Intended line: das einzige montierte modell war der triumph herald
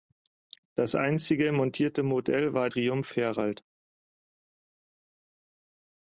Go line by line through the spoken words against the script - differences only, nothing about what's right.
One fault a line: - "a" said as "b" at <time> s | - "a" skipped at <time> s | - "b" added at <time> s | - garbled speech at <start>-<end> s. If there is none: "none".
- "der" skipped at 2.7 s